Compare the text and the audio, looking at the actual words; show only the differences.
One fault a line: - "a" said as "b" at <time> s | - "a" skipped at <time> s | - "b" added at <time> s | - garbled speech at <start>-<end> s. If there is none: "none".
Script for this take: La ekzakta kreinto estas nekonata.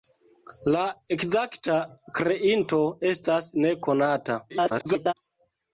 - garbled speech at 4.5-5.1 s